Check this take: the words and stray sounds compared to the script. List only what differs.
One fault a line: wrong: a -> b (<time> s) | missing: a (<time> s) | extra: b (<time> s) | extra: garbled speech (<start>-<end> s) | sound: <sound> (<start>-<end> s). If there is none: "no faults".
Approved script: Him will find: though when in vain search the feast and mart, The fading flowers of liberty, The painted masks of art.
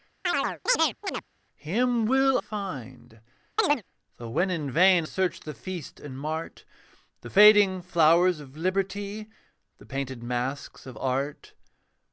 sound: chirp (0.2-1.2 s)
sound: chirp (3.6-3.8 s)